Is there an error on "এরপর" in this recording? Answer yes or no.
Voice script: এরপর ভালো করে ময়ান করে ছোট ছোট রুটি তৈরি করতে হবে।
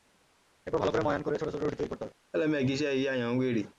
no